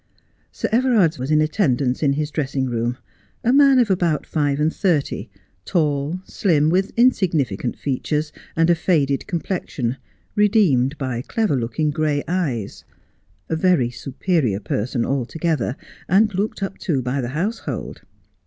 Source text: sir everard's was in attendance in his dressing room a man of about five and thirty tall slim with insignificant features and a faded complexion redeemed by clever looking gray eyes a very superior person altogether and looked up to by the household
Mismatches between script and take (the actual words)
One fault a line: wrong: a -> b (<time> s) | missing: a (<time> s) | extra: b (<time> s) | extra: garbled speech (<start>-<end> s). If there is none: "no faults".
no faults